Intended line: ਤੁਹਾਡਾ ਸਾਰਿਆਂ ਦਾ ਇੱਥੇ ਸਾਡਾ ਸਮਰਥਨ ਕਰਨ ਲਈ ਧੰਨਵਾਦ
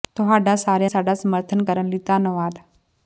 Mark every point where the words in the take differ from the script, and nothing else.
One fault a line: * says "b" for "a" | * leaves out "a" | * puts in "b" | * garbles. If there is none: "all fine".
* leaves out "ਦਾ ਇੱਥੇ"